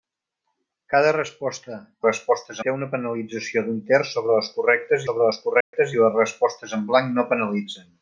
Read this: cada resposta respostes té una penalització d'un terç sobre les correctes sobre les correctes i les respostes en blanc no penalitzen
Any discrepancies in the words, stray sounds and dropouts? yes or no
yes